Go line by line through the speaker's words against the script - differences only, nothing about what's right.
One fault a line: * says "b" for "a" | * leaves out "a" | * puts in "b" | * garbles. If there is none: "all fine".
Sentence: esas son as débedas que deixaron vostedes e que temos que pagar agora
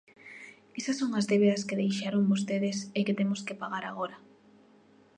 all fine